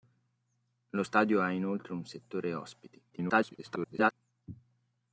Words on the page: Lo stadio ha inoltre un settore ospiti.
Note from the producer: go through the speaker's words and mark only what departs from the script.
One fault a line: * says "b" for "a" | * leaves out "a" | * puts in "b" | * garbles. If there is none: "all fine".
* garbles